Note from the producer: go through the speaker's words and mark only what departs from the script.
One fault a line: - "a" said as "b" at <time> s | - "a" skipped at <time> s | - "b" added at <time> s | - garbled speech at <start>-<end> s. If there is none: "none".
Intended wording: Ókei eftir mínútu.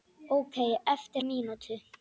none